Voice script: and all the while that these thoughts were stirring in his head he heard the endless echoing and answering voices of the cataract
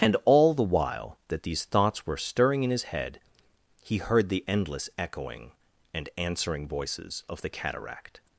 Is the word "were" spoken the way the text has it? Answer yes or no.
yes